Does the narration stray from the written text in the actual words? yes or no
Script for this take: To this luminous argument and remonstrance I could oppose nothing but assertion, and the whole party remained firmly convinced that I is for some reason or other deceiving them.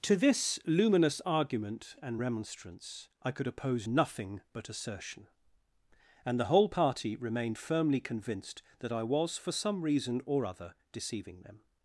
yes